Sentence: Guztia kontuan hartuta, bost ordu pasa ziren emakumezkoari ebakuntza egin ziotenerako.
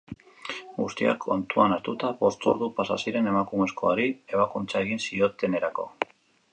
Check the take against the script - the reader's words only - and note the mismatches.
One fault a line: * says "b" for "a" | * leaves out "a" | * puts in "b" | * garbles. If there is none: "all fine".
all fine